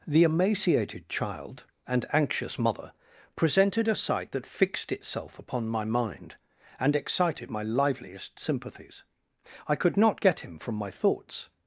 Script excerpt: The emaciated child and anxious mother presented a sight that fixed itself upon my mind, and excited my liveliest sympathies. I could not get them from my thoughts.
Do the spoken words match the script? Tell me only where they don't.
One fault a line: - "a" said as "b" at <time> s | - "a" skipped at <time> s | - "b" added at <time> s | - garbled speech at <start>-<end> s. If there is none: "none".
- "them" said as "him" at 10.4 s